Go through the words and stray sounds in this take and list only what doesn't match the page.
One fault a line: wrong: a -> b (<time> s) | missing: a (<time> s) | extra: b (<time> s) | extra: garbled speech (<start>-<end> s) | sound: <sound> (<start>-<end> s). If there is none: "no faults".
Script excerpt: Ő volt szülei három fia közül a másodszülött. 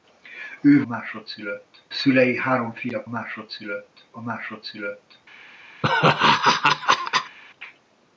wrong: volt -> másodszülött (0.8 s)
wrong: közül -> másodszülött (3.1 s)
sound: laugh (5.8-7.4 s)